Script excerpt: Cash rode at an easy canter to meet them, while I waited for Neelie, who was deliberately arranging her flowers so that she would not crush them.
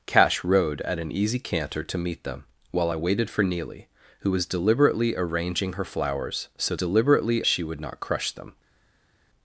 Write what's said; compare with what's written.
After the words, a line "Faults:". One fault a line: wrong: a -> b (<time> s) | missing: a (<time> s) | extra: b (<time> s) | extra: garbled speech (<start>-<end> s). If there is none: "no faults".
Cash rode at an easy canter to meet them, while I waited for Neelie, who was deliberately arranging her flowers so deliberately she would not crush them.
Faults:
wrong: that -> deliberately (6.7 s)